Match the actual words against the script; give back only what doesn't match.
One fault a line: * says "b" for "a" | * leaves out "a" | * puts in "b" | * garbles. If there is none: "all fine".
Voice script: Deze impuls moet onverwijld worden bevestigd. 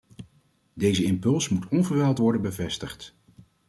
all fine